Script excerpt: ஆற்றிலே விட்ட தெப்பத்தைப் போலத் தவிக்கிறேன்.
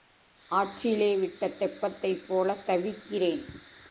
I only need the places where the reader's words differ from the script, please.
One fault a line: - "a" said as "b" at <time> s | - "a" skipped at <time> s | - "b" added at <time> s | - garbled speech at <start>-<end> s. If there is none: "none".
none